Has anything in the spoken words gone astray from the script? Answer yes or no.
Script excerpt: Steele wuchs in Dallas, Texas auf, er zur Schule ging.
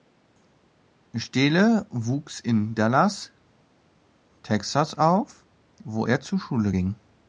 yes